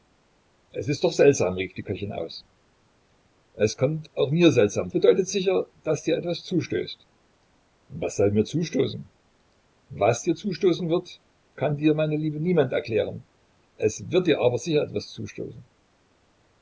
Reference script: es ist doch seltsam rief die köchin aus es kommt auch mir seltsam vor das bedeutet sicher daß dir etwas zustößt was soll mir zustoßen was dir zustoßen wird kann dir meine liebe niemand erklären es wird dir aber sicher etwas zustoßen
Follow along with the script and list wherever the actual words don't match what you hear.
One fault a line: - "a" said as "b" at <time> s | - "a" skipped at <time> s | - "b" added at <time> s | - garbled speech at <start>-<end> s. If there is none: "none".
- "vor das" skipped at 4.9 s